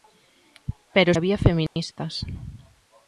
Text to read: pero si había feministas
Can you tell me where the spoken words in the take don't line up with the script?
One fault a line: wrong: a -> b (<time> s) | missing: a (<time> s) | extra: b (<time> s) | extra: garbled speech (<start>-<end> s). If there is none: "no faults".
missing: si (1.1 s)